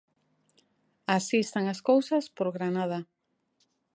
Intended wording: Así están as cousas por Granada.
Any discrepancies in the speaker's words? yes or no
no